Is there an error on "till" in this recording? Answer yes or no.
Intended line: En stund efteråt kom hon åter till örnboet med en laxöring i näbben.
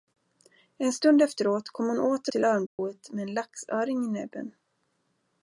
no